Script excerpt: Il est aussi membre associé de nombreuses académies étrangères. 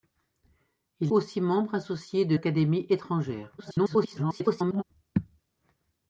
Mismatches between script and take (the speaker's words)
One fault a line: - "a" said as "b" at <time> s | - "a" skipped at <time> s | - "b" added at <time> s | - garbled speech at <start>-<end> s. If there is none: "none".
- "est" skipped at 1.1 s
- "nombreuses" skipped at 2.4 s
- garbled speech at 3.6-4.8 s